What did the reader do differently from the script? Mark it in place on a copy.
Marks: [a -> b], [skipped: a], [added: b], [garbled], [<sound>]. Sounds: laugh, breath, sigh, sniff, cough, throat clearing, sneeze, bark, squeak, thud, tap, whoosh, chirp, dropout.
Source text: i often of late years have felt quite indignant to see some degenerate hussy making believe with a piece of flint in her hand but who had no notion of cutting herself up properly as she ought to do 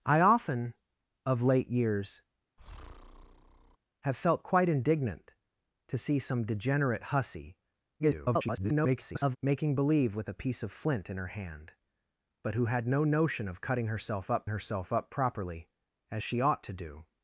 i often of late years [breath] have felt quite indignant to see some degenerate hussy [garbled] making believe with a piece of flint in her hand but who had no notion of cutting herself up [added: herself up] properly as she ought to do